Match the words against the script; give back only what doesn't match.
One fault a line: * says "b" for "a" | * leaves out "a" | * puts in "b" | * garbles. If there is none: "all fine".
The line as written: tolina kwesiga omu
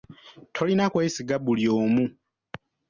* puts in "buli"